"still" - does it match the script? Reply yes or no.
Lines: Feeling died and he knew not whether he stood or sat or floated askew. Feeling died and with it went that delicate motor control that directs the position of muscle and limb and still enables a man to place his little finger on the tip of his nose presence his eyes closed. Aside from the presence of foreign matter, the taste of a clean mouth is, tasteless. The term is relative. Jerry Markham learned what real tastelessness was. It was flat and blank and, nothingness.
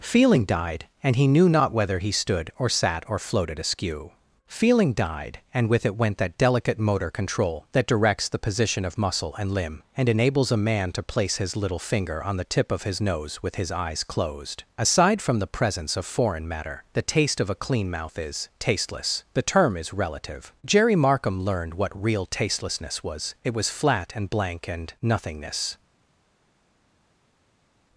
no